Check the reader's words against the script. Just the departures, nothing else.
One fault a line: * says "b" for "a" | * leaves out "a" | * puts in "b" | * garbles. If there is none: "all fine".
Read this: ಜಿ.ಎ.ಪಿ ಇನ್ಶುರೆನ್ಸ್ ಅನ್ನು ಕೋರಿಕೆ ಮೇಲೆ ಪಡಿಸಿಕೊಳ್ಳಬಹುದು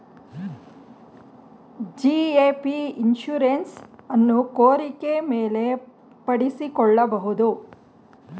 all fine